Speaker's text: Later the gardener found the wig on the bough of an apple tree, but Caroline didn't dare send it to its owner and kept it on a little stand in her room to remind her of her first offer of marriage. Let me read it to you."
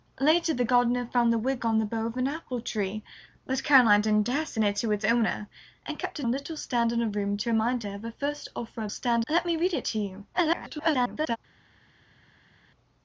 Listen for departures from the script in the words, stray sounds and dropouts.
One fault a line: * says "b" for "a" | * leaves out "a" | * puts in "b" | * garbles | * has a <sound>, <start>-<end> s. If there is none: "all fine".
* leaves out "on"
* says "stand" for "marriage"
* garbles